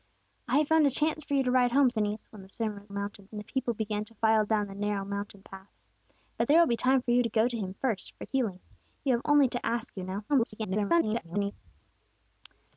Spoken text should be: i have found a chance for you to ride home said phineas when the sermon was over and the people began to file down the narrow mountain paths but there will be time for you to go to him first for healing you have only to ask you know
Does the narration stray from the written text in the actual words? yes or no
yes